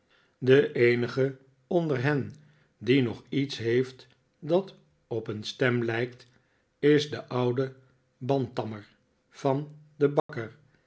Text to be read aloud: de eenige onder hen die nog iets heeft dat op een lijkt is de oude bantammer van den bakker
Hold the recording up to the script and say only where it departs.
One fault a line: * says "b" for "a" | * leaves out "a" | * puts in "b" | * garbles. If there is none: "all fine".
* puts in "stem"